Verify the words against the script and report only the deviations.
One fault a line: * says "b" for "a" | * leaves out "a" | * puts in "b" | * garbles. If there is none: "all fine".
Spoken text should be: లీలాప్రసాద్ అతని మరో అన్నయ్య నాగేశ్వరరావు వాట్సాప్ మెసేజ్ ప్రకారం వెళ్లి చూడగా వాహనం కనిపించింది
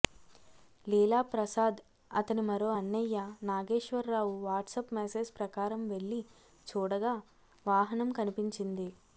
all fine